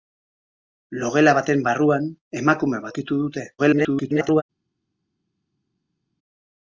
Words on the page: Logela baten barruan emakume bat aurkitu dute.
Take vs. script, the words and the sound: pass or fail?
fail